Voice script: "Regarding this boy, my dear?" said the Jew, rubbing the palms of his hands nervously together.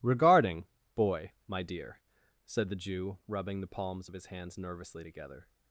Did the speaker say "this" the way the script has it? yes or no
no